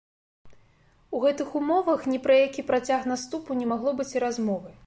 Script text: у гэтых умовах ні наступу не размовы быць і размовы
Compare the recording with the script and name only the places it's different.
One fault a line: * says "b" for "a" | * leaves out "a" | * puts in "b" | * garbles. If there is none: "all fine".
* puts in "пра які працяг"
* says "магло" for "размовы"